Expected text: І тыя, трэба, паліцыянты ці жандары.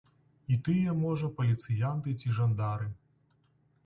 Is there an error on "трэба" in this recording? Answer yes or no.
yes